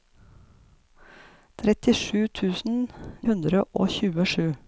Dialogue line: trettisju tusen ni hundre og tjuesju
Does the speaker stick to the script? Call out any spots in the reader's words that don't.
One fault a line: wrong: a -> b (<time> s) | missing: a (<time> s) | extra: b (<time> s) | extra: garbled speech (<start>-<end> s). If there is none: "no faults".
missing: ni (2.8 s)